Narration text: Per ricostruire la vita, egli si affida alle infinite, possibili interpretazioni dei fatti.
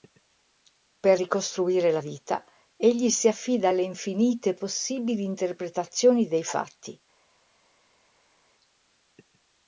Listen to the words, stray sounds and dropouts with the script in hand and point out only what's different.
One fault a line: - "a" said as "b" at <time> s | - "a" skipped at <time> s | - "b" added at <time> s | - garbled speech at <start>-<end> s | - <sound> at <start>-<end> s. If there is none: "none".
none